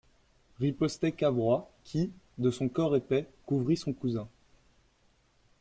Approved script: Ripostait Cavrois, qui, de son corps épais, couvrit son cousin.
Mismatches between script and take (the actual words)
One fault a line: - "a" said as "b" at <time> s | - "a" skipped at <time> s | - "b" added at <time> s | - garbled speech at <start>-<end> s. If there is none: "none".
none